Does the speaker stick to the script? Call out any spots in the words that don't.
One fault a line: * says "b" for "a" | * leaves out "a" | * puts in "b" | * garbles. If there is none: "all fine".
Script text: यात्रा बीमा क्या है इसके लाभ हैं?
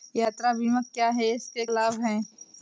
all fine